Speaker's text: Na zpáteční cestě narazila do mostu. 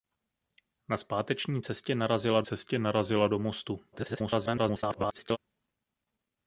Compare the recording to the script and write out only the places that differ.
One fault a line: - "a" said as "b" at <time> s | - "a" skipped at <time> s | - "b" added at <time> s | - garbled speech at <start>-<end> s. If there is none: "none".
- "cestě narazila" added at 2.4 s
- garbled speech at 3.9-5.4 s